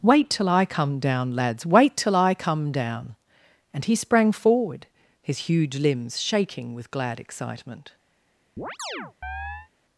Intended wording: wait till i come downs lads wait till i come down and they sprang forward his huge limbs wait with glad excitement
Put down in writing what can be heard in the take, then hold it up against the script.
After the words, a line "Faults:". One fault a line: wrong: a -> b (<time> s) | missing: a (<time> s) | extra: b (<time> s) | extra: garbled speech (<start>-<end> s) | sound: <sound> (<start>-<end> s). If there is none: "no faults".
wait till i come down lads wait till i come down and he sprang forward his huge limbs shaking with glad excitement
Faults:
wrong: downs -> down (1.0 s)
wrong: they -> he (3.9 s)
wrong: wait -> shaking (6.2 s)
sound: chirp (8.6-9.7 s)